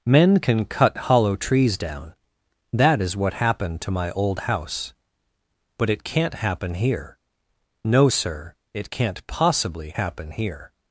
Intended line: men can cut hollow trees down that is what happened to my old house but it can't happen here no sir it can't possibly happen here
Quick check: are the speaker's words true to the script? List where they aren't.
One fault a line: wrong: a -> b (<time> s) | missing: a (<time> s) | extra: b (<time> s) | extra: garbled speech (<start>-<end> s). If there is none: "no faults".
no faults